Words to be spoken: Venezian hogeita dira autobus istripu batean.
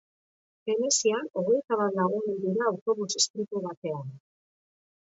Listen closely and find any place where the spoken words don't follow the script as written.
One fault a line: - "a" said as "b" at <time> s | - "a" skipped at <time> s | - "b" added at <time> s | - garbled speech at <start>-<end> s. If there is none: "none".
- "bat lagun hil" added at 1.8 s